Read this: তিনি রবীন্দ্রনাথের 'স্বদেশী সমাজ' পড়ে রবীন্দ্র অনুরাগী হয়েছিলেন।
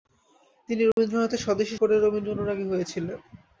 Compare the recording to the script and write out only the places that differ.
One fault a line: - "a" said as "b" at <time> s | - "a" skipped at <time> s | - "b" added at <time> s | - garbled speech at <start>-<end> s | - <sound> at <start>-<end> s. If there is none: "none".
- dropout at 0.9-1.0 s
- "সমাজ" skipped at 1.8 s